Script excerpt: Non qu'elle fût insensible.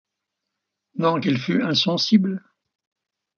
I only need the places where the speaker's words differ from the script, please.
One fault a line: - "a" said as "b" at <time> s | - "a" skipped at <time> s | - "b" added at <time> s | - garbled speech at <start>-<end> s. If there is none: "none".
none